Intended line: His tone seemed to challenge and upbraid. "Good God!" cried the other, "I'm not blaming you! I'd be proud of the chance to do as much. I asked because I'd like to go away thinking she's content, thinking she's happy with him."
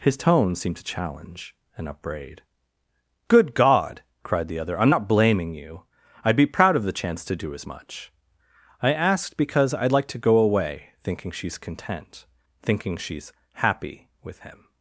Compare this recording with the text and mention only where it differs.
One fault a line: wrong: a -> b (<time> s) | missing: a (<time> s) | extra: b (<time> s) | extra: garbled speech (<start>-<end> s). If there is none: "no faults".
no faults